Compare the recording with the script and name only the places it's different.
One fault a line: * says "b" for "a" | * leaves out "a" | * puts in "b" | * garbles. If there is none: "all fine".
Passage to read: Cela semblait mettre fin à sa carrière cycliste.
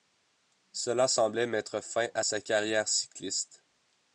all fine